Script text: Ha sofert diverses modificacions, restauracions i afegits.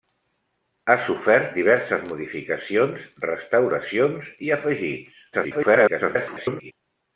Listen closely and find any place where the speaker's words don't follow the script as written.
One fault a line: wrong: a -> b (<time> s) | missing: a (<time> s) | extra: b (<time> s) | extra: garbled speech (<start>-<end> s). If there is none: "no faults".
extra: garbled speech (5.3-6.7 s)